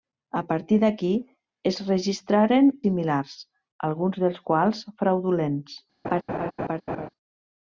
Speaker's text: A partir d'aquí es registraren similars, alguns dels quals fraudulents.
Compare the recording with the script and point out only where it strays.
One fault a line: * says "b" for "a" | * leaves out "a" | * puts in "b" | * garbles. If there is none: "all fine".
all fine